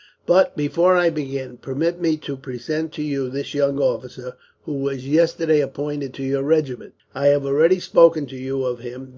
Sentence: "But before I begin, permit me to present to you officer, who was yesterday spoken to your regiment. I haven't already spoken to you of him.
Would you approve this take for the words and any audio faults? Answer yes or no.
no